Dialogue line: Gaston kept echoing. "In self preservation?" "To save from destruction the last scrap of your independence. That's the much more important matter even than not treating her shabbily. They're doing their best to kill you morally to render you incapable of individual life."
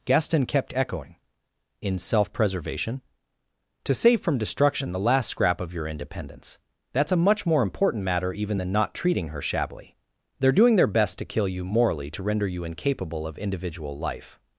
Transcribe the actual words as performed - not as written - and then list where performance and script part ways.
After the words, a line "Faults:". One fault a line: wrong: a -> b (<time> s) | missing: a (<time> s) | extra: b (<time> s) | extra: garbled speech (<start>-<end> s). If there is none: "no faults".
Gaston kept echoing. "In self preservation?" "To save from destruction the last scrap of your independence. That's a much more important matter even than not treating her shabbily. They're doing their best to kill you morally to render you incapable of individual life."
Faults:
wrong: the -> a (7.1 s)